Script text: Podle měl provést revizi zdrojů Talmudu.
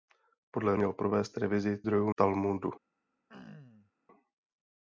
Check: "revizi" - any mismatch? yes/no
no